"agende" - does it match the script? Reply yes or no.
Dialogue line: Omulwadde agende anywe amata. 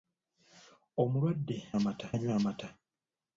no